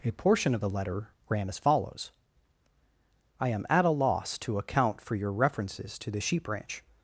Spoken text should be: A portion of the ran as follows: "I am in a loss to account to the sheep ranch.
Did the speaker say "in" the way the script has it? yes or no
no